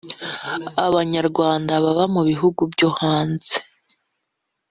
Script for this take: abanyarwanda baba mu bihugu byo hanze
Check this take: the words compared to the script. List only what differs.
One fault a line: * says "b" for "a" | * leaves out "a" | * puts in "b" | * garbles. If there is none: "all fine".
all fine